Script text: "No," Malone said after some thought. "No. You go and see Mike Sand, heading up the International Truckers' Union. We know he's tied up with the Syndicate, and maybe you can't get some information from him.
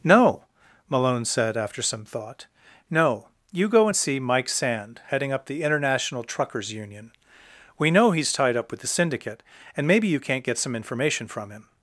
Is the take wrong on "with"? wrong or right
right